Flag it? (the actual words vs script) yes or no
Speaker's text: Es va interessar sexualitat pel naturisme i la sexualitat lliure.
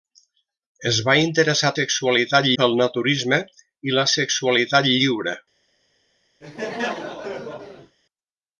no